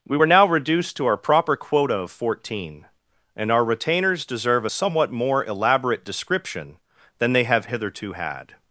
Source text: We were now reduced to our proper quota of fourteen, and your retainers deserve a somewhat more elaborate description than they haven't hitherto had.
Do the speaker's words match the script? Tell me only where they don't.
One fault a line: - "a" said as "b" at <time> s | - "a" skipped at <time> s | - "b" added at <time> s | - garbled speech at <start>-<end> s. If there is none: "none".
- "your" said as "our" at 3.5 s
- "haven't" said as "have" at 7.4 s